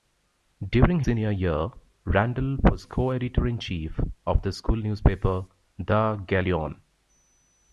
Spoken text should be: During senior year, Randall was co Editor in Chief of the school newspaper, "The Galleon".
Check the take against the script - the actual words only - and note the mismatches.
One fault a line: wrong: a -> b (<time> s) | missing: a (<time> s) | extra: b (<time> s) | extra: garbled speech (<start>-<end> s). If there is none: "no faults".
no faults